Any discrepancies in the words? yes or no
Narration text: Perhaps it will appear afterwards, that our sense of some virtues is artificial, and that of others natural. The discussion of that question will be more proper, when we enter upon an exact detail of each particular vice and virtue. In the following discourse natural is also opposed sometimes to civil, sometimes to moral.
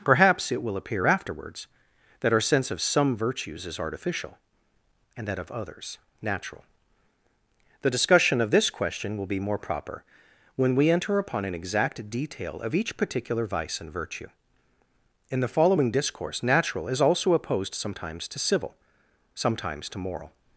yes